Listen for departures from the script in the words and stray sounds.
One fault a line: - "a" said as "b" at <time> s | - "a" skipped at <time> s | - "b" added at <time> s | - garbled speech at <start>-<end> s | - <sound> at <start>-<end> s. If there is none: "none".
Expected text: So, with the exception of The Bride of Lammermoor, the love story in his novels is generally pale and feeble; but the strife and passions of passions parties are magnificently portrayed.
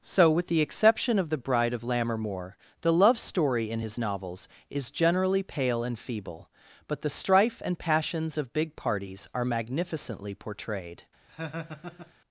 - "passions" said as "big" at 8.5 s
- laugh at 11.3-12.1 s